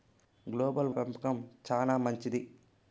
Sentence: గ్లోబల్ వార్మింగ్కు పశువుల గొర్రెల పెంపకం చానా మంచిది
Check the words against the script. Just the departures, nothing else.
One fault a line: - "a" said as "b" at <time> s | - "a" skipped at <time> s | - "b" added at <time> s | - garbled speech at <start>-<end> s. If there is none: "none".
- "వార్మింగ్కు పశువుల గొర్రెల" skipped at 0.9 s